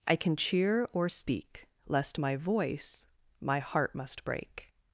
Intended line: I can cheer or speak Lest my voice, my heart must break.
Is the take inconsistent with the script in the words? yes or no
no